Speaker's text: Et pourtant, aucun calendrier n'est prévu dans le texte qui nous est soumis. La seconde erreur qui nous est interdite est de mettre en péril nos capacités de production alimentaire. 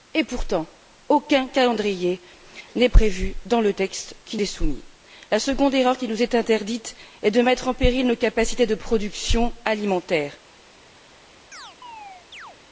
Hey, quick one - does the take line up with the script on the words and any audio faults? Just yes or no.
no